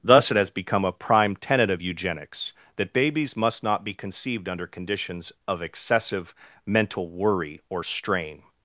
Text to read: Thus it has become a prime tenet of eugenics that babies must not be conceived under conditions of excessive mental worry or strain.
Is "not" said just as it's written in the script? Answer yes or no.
yes